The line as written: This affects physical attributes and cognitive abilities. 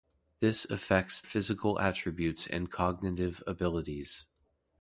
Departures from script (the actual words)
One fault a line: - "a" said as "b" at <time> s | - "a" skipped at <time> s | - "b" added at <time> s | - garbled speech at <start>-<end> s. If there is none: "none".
none